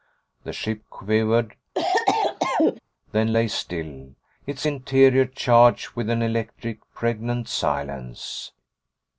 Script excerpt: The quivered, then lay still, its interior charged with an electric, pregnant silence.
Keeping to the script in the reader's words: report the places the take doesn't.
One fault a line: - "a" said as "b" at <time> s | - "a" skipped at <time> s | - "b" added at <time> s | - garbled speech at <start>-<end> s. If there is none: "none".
- "ship" added at 0.5 s